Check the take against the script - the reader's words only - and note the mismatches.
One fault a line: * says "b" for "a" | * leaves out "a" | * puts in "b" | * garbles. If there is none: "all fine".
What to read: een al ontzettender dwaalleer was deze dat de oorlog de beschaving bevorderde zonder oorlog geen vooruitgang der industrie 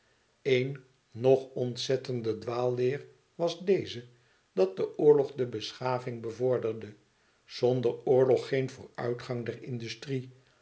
* says "nog" for "al"